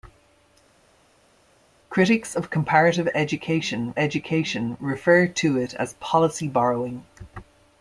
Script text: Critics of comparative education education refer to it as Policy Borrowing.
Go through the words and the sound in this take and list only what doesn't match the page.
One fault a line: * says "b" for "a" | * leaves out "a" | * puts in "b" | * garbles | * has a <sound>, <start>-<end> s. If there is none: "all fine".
all fine